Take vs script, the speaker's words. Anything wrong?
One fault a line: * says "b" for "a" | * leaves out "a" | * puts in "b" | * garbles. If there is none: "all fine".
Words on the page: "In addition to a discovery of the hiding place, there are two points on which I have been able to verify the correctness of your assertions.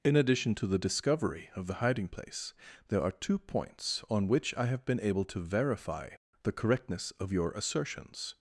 * says "the" for "a"